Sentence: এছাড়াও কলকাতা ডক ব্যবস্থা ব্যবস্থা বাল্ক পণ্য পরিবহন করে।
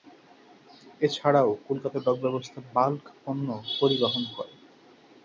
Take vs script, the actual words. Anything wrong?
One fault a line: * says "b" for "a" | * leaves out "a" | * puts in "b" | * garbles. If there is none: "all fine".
* leaves out "ব্যবস্থা"